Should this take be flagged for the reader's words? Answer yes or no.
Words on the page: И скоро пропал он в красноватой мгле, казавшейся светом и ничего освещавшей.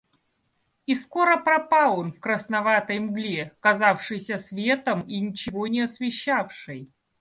yes